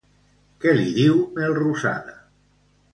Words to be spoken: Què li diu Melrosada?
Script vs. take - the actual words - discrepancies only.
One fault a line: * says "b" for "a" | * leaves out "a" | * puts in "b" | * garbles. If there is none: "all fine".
all fine